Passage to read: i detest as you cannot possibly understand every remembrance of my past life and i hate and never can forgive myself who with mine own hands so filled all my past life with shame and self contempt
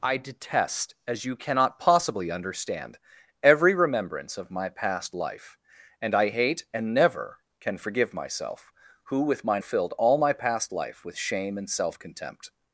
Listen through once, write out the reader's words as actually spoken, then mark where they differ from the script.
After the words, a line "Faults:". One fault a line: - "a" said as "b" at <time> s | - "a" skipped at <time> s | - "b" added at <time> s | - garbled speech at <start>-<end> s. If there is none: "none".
i detest as you cannot possibly understand every remembrance of my past life and i hate and never can forgive myself who with mine filled all my past life with shame and self contempt
Faults:
- "own hands so" skipped at 9.6 s